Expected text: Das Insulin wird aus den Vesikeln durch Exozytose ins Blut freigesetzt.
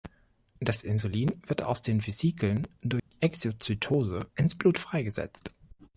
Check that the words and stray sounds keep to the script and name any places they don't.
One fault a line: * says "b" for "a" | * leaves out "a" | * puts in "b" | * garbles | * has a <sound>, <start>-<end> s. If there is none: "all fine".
* has a dropout, 3.0-3.1 s